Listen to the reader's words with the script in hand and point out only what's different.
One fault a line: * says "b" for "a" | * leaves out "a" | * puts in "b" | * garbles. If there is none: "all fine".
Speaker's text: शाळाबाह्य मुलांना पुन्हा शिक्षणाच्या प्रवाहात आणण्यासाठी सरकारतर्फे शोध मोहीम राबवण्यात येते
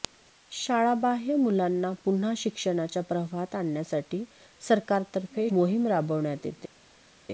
* leaves out "शोध"